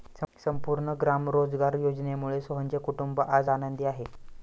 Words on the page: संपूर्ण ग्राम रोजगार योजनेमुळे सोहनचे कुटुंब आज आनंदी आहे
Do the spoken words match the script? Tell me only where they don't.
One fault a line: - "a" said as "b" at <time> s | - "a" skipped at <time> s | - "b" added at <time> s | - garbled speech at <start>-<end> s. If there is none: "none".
none